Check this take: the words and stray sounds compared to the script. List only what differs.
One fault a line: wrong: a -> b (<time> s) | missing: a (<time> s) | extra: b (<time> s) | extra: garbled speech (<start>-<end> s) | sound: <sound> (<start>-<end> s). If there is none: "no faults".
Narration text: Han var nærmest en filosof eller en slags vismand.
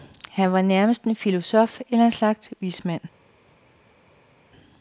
no faults